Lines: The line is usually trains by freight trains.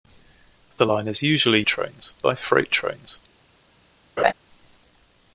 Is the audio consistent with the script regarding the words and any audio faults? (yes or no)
no